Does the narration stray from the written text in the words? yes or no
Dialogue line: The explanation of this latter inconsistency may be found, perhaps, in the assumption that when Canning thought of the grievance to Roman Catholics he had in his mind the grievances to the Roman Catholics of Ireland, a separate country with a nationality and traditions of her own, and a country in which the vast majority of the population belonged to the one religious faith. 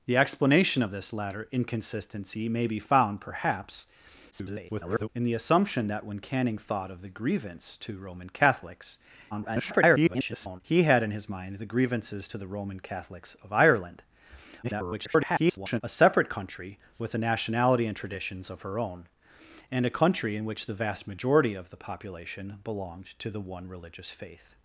yes